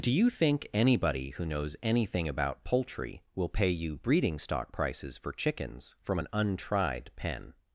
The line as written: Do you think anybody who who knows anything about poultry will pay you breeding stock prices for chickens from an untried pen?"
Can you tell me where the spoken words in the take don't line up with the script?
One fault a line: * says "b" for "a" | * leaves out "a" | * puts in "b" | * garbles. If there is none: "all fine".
* leaves out "who"